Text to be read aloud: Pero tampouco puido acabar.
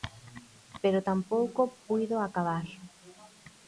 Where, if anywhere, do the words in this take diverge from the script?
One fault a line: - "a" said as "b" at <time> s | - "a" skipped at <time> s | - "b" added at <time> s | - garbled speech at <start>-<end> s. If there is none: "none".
none